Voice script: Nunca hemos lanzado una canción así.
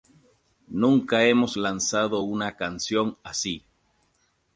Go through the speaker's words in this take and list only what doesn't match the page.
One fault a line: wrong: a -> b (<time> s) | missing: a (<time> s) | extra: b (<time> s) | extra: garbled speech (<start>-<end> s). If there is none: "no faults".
no faults